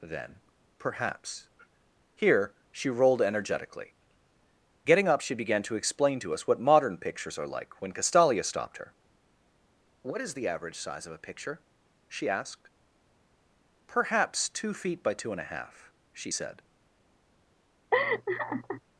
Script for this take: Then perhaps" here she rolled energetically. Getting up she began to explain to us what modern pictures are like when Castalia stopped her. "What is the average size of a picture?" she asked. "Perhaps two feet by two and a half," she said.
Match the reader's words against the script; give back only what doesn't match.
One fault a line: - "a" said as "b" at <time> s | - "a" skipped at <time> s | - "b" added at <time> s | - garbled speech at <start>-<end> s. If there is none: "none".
none